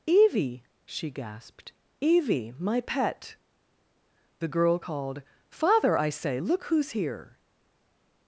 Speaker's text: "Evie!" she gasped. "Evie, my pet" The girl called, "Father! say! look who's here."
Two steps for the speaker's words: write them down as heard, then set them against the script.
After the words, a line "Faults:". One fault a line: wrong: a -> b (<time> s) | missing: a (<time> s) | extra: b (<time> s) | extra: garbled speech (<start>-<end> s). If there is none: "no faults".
"Evie!" she gasped. "Evie, my pet" The girl called, "Father! I say! look who's here."
Faults:
extra: I (6.0 s)